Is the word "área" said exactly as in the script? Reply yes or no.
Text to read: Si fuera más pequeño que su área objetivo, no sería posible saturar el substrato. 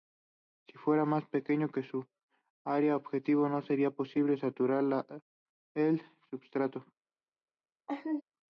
yes